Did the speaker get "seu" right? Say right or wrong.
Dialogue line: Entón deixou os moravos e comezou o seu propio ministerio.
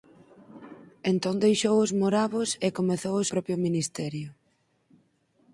wrong